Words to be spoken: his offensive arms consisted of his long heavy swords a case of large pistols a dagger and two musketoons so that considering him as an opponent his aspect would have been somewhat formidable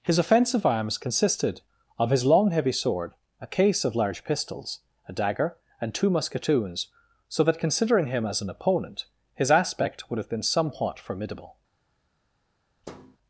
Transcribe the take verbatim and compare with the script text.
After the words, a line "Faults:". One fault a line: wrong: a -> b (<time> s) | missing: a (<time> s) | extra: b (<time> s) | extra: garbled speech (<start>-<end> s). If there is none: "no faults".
his offensive arms consisted of his long heavy sword a case of large pistols a dagger and two musketoons so that considering him as an opponent his aspect would have been somewhat formidable
Faults:
wrong: swords -> sword (2.7 s)